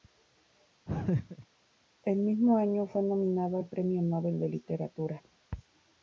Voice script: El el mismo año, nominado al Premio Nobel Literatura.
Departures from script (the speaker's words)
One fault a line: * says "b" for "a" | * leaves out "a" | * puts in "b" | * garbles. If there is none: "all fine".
* leaves out "el"
* puts in "fue"
* puts in "de"